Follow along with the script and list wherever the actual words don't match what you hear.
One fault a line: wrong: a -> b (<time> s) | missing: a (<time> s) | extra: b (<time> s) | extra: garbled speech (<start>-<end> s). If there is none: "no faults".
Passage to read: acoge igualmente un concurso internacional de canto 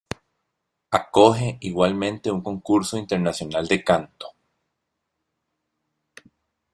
no faults